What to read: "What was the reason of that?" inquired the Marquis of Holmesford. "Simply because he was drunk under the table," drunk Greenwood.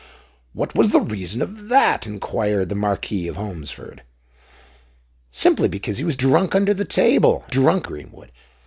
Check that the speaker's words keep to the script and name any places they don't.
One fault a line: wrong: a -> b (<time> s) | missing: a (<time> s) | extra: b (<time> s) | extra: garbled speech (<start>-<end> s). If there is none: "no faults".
no faults